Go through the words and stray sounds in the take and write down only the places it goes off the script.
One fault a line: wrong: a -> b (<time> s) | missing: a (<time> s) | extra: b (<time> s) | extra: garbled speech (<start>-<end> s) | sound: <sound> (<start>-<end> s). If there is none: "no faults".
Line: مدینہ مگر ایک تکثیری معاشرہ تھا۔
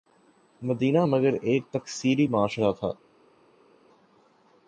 no faults